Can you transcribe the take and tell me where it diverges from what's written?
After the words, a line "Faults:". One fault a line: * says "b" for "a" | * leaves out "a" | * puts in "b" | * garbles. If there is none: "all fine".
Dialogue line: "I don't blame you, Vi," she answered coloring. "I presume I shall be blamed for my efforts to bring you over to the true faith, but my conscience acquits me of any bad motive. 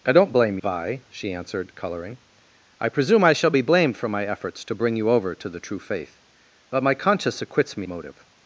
"I don't blame Vi," she answered coloring. "I presume I shall be blamed for my efforts to bring you over to the true faith, but my conscience acquits me motive.
Faults:
* leaves out "you"
* leaves out "of any bad"